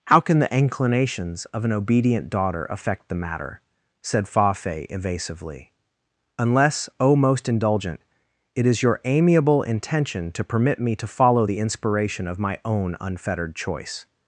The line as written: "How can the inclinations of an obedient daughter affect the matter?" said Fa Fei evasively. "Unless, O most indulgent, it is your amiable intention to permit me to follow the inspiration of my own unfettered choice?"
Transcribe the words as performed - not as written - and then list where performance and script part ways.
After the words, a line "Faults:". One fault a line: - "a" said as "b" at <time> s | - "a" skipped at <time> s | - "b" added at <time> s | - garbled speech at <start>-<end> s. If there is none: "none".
"How can the inclinations of an obedient daughter affect the matter?" said Fa Fei evasively. "Unless, O most indulgent, it is your amiable intention to permit me to follow the inspiration of my own unfettered choice?"
Faults:
none